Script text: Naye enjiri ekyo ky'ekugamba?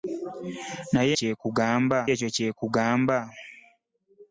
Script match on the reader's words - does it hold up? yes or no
no